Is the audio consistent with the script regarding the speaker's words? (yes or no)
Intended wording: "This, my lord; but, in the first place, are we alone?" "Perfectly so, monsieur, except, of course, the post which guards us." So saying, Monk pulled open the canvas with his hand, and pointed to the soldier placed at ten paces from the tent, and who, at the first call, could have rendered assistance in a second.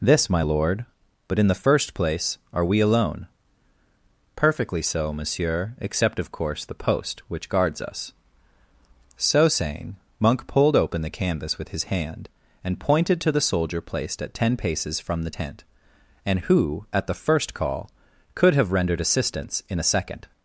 yes